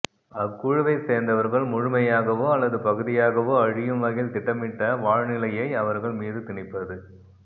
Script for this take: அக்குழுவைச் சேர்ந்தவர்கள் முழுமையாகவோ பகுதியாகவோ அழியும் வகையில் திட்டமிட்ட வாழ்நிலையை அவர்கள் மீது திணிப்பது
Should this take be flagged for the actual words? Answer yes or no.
yes